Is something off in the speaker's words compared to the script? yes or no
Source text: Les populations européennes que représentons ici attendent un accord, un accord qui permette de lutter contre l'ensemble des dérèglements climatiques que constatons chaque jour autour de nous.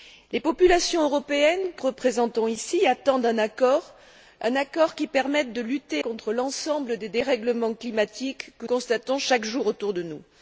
no